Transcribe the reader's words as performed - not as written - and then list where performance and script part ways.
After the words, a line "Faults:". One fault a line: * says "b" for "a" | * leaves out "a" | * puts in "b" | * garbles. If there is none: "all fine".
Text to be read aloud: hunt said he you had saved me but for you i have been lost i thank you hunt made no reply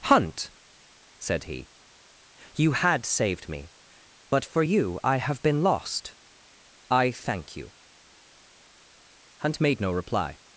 hunt said he you had saved me but for you i have been lost i thank you hunt made no reply
Faults:
all fine